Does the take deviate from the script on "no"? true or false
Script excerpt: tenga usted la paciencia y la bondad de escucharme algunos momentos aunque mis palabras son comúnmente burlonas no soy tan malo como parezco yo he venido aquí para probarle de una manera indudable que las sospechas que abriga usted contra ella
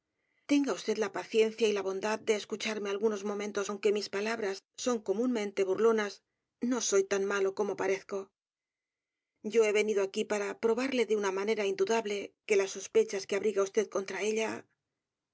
false